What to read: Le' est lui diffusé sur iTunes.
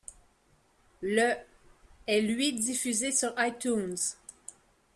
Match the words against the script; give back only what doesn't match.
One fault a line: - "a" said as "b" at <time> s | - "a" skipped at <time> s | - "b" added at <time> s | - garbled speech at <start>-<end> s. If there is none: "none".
none